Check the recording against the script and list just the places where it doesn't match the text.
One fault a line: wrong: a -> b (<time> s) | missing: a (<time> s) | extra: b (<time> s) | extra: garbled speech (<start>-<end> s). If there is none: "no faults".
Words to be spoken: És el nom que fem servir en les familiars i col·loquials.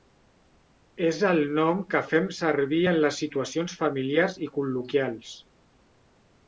extra: situacions (3.2 s)